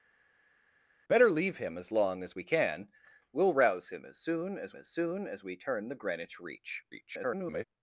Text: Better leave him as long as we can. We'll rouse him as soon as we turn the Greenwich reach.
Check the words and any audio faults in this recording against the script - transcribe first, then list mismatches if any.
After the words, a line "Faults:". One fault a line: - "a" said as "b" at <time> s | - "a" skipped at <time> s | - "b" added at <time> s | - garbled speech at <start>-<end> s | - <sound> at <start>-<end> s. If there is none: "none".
Better leave him as long as we can. We'll rouse him as soon as as soon as we turn the Greenwich reach. [garbled]
Faults:
- "as soon as" added at 4.7 s
- garbled speech at 6.9-7.6 s